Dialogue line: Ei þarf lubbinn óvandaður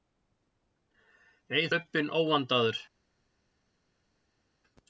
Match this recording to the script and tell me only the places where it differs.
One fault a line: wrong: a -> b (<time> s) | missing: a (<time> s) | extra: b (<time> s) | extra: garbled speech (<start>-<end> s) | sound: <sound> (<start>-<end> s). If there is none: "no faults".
missing: þarf (1.7 s)